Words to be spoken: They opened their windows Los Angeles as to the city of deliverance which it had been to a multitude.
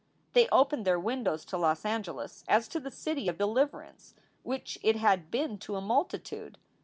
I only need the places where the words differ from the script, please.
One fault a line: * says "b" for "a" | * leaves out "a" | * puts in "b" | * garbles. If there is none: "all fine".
* puts in "to"